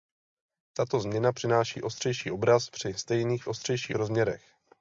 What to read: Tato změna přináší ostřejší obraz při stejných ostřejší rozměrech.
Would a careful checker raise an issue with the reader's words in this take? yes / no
no